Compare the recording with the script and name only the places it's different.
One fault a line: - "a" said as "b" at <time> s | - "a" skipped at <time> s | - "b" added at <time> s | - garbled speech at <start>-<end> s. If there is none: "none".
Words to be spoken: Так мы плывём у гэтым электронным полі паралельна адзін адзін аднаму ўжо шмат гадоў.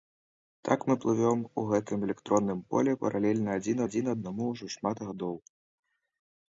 none